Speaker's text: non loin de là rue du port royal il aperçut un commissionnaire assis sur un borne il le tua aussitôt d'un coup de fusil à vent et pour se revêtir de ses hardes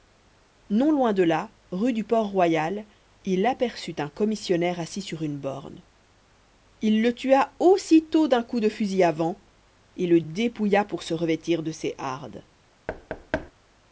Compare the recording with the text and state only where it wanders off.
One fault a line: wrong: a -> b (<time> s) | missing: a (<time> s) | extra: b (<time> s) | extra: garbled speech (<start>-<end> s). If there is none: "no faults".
wrong: un -> une (5.2 s)
extra: le dépouilla (10.0 s)